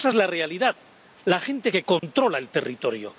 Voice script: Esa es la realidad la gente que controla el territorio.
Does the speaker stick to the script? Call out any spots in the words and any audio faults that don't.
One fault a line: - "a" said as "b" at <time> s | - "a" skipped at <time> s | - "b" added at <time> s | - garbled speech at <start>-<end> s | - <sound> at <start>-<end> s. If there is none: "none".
- dropout at 2.0-2.0 s